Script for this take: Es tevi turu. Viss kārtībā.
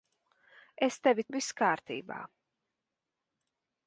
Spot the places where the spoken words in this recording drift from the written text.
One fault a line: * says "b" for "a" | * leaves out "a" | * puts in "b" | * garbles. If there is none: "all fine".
* leaves out "turu"